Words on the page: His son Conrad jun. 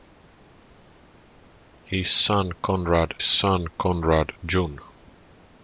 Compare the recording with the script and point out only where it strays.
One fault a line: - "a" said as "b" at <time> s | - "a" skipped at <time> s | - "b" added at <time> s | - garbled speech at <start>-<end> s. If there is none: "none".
- "son Conrad" added at 3.2 s